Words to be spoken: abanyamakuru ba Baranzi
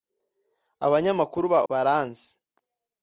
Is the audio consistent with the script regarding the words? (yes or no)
yes